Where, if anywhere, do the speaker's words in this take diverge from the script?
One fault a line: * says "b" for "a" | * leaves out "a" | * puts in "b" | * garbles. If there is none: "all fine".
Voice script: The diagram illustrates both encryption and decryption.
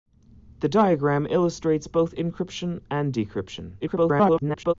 * garbles